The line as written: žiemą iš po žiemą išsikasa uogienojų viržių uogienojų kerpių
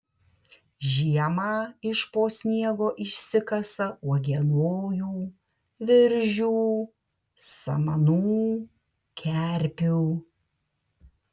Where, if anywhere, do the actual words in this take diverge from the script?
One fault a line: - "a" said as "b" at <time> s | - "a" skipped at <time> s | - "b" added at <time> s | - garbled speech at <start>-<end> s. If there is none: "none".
- "žiemą" said as "sniego" at 2.4 s
- "uogienojų" said as "samanų" at 7.5 s